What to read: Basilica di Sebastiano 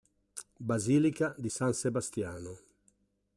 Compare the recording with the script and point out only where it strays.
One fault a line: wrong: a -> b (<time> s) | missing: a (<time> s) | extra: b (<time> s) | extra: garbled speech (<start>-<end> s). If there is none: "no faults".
extra: San (1.5 s)